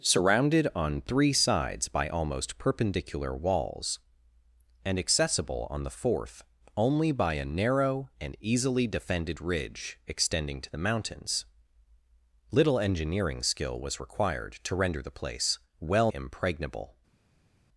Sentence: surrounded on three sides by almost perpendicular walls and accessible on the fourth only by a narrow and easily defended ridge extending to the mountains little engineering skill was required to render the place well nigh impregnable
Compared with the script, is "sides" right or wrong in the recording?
right